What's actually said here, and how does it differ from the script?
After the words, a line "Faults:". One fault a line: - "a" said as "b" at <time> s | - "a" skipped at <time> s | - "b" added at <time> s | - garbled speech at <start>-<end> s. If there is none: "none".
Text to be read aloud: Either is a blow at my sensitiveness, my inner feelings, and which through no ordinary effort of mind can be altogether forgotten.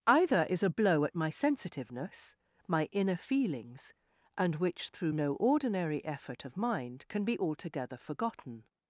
Either is a blow at my sensitiveness, my inner feelings, and which through no ordinary effort of mind can be altogether forgotten.
Faults:
none